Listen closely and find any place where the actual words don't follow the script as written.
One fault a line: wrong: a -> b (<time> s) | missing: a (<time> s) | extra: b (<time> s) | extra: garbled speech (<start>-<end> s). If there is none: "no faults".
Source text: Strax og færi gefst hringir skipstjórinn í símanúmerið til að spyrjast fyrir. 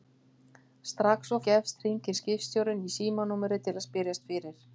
missing: færi (1.4 s)